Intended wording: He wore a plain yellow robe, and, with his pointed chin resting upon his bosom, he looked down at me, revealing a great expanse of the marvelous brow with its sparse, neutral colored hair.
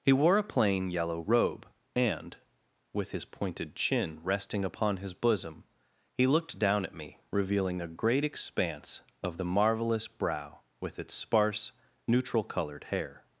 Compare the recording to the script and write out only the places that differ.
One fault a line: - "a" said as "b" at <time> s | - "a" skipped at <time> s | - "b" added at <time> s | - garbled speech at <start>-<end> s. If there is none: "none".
none